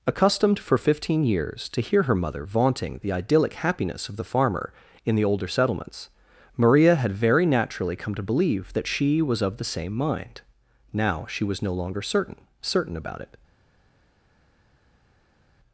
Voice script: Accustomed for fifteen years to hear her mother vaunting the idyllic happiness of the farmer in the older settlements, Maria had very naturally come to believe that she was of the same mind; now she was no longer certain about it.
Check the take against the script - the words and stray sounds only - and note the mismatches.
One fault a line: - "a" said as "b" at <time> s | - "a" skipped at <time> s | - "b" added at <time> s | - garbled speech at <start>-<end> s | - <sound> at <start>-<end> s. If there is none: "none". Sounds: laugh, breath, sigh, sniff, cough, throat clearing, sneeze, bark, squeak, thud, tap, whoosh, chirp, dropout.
- "certain" added at 12.6 s